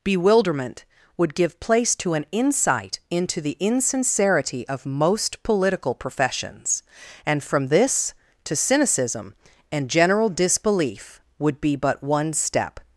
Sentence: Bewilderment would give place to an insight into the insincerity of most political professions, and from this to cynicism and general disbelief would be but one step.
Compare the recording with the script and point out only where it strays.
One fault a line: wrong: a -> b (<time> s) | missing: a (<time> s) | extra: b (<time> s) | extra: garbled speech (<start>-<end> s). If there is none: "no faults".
no faults